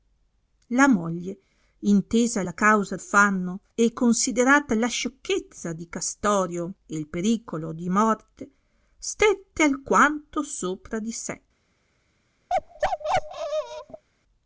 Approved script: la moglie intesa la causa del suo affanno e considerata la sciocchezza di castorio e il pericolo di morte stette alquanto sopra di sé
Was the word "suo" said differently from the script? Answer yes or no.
yes